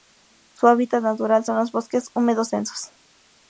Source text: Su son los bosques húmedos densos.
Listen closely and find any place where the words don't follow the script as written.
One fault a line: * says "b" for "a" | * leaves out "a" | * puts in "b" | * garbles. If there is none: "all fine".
* puts in "hábitat natural"